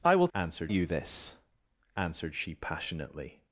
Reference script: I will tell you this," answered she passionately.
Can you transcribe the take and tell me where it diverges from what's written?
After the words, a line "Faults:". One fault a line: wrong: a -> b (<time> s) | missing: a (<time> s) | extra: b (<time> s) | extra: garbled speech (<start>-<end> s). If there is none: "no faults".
I will answered you this," answered she passionately.
Faults:
wrong: tell -> answered (0.3 s)